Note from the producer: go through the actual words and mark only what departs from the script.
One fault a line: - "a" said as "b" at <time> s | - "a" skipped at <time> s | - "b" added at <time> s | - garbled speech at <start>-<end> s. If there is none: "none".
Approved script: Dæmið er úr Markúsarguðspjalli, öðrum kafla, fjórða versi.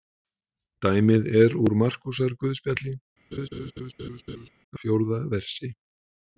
- "öðrum kafla" skipped at 3.0 s